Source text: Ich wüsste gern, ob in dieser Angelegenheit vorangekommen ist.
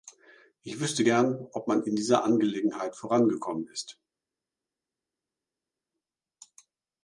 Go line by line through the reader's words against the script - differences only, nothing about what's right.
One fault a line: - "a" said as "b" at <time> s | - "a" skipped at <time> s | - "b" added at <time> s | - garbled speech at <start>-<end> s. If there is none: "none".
- "man" added at 1.7 s